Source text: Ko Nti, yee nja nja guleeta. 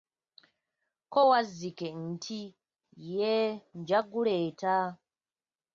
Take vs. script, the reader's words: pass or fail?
fail